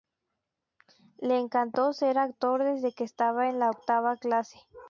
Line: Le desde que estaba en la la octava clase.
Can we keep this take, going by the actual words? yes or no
no